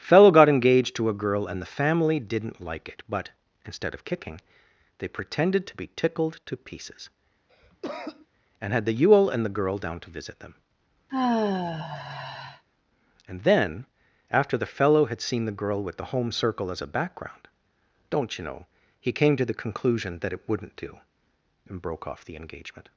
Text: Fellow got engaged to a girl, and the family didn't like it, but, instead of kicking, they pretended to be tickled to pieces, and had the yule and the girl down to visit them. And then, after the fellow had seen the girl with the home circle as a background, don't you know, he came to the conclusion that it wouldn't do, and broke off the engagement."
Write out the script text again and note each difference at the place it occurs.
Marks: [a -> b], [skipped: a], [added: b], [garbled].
Fellow got engaged to a girl, and the family didn't like it, but, instead of kicking, they pretended to be tickled to pieces, and had the yule and the girl down to visit them. And then, after the fellow had seen the girl with the home circle as a background, don't you know, he came to the conclusion that it wouldn't do, and broke off the engagement."